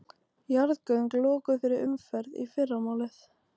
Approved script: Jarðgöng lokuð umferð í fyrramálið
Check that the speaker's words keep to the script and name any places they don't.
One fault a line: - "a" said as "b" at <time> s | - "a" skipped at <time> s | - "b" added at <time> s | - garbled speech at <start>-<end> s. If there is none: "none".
- "fyrir" added at 1.6 s